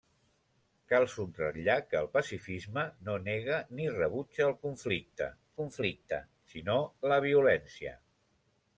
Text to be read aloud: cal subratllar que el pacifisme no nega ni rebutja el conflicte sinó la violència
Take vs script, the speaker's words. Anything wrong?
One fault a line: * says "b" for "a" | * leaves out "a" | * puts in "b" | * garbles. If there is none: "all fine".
* puts in "conflicte"